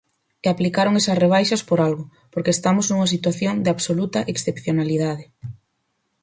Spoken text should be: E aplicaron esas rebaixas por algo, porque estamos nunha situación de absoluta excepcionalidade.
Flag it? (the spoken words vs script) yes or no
no